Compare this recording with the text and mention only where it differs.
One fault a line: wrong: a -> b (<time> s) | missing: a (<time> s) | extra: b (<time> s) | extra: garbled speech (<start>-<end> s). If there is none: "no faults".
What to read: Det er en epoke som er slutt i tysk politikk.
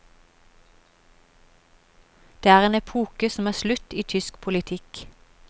no faults